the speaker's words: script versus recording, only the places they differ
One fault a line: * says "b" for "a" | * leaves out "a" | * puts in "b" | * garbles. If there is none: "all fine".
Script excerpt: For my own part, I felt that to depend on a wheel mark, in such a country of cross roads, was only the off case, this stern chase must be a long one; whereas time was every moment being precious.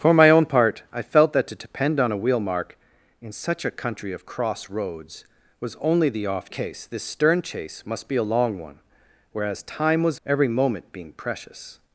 all fine